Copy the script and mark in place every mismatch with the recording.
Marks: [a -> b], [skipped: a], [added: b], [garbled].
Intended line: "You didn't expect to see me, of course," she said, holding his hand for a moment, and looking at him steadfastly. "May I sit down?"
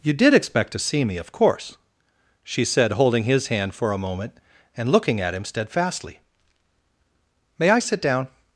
"You [didn't -> did] expect to see me, of course," she said, holding his hand for a moment, and looking at him steadfastly. "May I sit down?"